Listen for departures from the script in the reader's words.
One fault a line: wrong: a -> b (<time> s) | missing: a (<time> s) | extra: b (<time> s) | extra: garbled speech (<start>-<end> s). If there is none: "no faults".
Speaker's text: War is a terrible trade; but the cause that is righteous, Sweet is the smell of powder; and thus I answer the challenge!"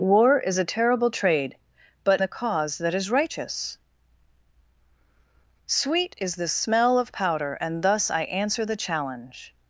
no faults